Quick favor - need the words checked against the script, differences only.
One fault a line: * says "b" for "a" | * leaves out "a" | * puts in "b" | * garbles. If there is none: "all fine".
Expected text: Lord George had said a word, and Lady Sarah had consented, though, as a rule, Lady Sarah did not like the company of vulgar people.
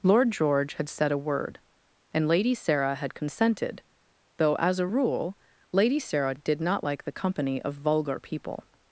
all fine